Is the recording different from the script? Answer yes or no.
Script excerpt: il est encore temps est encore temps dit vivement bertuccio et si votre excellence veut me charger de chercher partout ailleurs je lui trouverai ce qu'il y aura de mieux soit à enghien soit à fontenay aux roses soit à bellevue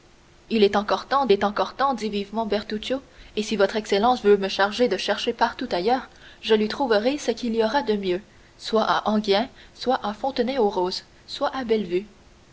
no